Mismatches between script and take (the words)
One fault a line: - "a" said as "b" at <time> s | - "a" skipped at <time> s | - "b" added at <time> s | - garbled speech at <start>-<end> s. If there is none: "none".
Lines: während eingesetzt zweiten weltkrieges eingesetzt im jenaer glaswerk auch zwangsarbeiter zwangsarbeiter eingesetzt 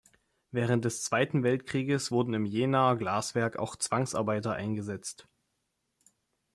- "eingesetzt" said as "des" at 0.8 s
- "eingesetzt" said as "wurden" at 2.1 s
- "zwangsarbeiter" skipped at 4.5 s